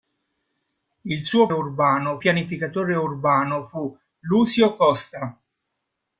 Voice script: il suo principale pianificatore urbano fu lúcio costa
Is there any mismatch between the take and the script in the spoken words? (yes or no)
yes